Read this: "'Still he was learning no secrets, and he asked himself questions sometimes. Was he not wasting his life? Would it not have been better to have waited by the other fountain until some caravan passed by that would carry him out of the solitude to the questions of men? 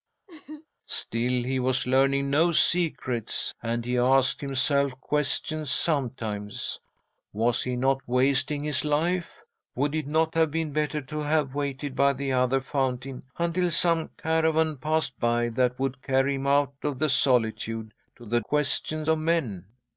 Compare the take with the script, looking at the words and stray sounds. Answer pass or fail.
fail